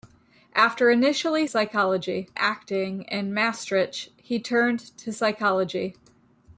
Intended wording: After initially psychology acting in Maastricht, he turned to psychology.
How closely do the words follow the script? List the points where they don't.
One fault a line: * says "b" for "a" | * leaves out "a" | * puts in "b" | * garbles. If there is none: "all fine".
all fine